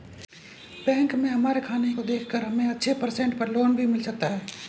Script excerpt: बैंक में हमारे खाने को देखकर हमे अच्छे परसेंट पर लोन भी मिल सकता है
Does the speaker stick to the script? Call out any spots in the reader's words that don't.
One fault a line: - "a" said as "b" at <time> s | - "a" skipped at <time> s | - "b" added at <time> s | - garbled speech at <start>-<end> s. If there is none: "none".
none